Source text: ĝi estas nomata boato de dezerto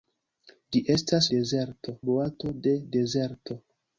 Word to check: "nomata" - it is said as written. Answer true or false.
false